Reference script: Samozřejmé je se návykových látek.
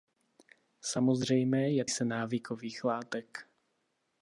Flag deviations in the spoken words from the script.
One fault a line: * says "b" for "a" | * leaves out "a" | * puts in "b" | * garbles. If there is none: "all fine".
all fine